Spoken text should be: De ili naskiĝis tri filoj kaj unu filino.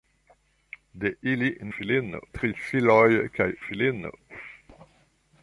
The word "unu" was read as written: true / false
false